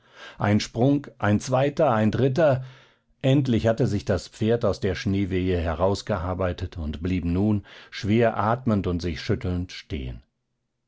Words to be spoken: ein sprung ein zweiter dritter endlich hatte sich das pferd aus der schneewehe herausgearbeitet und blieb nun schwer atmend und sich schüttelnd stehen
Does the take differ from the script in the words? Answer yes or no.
yes